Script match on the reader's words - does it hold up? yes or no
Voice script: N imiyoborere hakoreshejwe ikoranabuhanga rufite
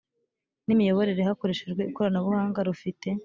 yes